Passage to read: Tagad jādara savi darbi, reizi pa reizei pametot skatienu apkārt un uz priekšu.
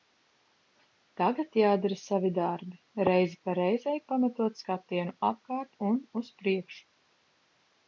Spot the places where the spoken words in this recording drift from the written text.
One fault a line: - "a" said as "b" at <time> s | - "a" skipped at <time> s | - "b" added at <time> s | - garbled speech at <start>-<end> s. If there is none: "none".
none